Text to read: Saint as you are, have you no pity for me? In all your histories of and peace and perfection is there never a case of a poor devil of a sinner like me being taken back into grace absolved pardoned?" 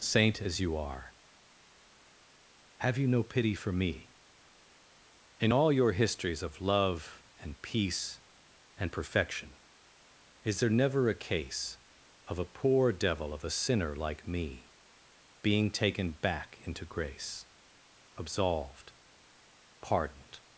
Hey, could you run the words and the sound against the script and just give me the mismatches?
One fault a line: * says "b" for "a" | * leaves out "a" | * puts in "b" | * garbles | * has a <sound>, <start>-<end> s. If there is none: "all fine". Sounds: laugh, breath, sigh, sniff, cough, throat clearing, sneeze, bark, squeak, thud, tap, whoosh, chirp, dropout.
* puts in "love"